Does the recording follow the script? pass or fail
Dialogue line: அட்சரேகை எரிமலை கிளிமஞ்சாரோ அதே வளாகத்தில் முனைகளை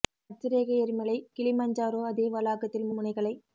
pass